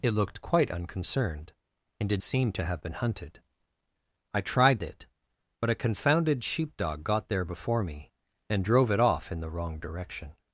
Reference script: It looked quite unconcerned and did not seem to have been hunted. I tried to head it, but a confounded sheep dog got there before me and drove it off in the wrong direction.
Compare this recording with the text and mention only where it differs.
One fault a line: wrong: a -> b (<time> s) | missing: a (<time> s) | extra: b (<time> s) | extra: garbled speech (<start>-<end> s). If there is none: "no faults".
missing: not (2.2 s)
missing: to head (4.8 s)